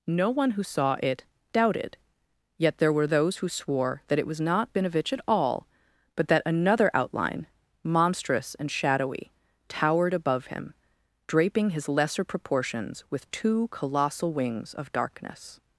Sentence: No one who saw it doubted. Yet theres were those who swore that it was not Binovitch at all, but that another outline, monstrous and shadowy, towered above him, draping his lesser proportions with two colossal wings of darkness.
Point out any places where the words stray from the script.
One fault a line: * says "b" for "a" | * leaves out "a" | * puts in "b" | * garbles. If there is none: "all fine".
* says "there" for "theres"